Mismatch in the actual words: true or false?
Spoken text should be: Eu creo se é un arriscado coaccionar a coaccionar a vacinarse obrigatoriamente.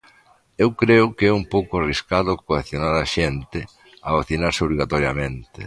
true